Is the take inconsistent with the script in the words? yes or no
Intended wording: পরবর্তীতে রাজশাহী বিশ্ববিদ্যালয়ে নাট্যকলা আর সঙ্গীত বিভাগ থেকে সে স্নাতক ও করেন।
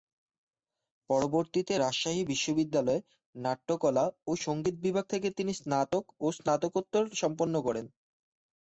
yes